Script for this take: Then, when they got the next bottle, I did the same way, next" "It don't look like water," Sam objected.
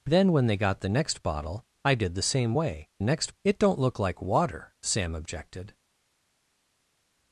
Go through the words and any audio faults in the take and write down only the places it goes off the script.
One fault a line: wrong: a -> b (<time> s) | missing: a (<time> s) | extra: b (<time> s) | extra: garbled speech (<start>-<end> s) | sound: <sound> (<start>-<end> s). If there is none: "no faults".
no faults